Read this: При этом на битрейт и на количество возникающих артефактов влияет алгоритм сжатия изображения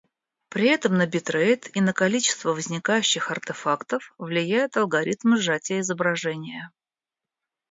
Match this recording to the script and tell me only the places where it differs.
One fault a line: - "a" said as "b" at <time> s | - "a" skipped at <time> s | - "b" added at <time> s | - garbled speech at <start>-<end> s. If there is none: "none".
none